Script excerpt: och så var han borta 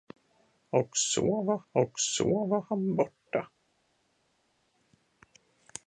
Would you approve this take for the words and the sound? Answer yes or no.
no